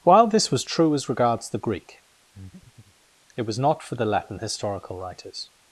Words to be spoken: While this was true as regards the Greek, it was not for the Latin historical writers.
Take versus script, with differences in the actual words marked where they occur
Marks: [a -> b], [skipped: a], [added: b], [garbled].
While this was true as regards the Greek, it was not for the Latin historical writers.